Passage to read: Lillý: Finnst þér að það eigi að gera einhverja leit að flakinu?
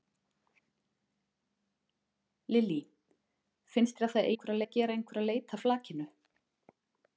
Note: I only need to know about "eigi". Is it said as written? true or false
false